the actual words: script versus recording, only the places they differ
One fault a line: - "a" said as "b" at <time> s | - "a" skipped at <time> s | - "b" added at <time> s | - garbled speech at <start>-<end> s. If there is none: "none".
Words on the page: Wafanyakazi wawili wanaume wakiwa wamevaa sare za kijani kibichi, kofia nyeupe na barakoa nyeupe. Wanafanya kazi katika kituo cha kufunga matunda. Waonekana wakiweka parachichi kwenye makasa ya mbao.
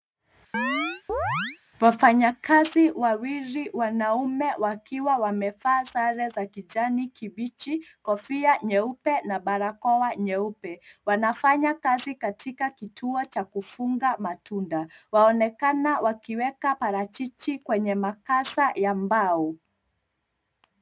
none